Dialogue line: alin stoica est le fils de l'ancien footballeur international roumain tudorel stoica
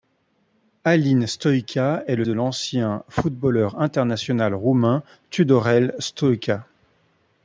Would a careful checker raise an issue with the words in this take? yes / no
yes